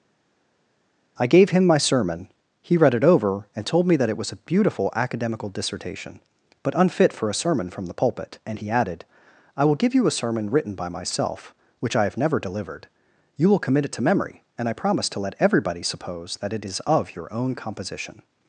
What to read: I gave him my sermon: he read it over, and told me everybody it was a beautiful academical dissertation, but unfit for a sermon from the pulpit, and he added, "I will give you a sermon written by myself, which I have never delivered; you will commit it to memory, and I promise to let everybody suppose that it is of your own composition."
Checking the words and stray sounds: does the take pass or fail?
fail